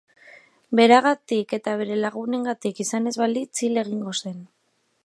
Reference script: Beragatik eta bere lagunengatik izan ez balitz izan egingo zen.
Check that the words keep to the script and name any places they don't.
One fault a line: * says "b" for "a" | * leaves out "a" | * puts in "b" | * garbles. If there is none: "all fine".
* says "hil" for "izan"